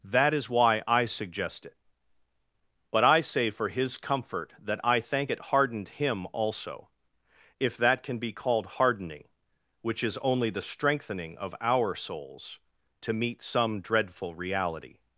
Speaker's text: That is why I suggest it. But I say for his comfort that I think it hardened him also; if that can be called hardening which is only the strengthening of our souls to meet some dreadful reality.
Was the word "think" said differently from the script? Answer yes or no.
yes